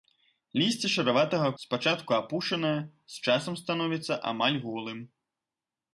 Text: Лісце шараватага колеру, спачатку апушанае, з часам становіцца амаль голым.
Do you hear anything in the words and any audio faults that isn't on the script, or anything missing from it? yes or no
yes